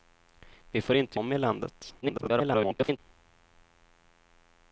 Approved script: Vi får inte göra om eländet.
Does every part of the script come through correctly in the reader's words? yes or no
no